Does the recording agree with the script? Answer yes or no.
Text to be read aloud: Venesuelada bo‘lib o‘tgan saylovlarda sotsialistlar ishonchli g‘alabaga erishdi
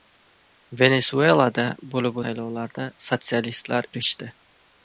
no